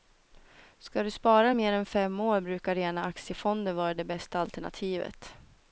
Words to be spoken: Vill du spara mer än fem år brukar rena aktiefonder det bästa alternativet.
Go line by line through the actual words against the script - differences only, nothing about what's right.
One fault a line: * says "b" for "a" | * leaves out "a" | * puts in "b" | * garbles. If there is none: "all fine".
* says "Ska" for "Vill"
* puts in "vara"